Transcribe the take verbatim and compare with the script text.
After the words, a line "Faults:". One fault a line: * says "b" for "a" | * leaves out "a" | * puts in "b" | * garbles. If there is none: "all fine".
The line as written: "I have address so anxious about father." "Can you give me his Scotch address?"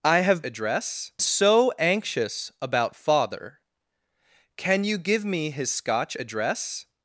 "I have address so anxious about father." "Can you give me his Scotch address?"
Faults:
all fine